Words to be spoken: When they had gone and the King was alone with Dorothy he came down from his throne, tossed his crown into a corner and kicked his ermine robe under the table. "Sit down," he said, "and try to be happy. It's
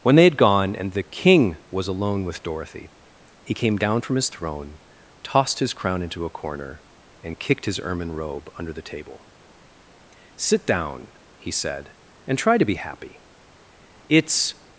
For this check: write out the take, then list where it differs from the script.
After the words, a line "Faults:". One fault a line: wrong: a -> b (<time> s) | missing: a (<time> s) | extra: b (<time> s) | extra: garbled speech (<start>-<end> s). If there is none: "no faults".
When they had gone and the King was alone with Dorothy he came down from his throne, tossed his crown into a corner and kicked his ermine robe under the table. "Sit down," he said, "and try to be happy. It's
Faults:
no faults